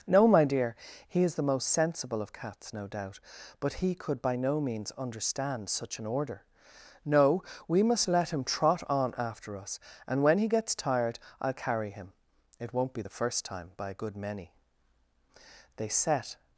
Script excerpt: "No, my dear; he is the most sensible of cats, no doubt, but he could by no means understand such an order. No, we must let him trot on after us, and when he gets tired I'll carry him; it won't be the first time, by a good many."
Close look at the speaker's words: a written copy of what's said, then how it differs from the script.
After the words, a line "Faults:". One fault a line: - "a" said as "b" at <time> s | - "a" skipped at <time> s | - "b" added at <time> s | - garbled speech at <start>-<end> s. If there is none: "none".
"No, my dear; he is the most sensible of cats, no doubt, but he could by no means understand such an order. No, we must let him trot on after us, and when he gets tired I'll carry him; it won't be the first time, by a good many." They set
Faults:
- "They set" added at 15.7 s